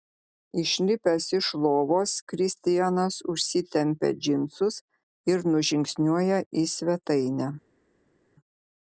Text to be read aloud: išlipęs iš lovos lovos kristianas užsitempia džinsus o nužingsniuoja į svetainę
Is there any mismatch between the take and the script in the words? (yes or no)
yes